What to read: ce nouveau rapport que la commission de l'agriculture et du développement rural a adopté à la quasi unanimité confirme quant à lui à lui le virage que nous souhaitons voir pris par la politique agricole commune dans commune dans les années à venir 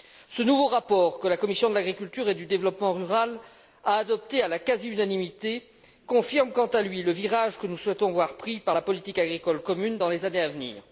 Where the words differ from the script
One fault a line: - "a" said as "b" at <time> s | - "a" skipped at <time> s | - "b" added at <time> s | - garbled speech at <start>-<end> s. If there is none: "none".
- "à lui" skipped at 7.0 s
- "commune dans" skipped at 10.1 s